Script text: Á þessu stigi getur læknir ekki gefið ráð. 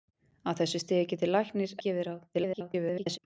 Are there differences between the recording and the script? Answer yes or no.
yes